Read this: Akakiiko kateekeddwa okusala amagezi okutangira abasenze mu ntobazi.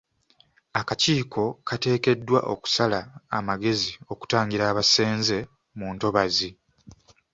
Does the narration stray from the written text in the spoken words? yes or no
no